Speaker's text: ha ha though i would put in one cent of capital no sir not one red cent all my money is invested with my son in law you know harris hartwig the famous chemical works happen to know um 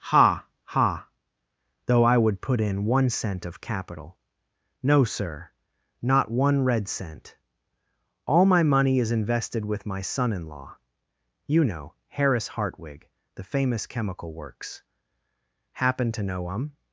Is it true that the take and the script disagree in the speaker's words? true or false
false